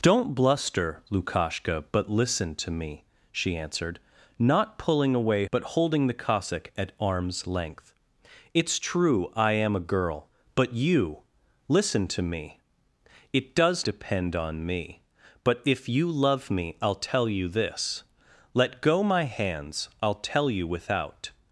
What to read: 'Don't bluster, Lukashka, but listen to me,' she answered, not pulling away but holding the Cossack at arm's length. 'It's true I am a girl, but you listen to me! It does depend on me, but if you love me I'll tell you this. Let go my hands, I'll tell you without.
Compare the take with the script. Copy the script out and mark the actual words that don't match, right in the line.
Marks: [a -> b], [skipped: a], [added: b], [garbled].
'Don't bluster, Lukashka, but listen to me,' she answered, not pulling away but holding the Cossack at arm's length. 'It's true I am a girl, but you listen to me! It does depend on me, but if you love me I'll tell you this. Let go my hands, I'll tell you without.